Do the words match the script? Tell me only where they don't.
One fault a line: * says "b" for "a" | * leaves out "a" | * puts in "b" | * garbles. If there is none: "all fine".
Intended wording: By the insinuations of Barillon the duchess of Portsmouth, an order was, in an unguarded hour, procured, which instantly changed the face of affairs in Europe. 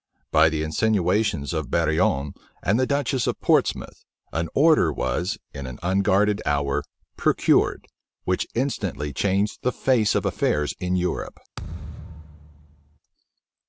* puts in "and"